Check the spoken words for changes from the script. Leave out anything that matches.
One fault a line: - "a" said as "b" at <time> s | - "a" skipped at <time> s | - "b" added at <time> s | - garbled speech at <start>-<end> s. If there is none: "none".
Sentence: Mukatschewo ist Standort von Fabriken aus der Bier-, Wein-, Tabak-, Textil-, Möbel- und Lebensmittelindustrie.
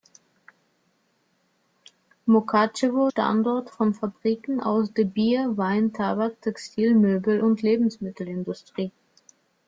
- "ist" skipped at 3.1 s